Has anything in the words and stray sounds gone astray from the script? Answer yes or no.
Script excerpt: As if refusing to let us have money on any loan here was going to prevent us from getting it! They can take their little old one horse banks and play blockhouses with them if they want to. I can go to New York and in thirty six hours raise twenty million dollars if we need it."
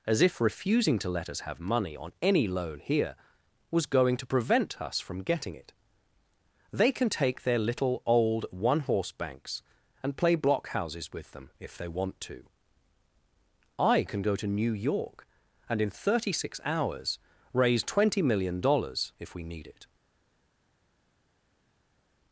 no